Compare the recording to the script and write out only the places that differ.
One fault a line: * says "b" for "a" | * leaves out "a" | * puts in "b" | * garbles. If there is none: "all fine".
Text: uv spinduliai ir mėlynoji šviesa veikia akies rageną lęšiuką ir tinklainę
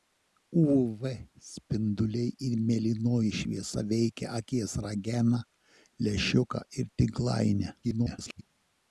* garbles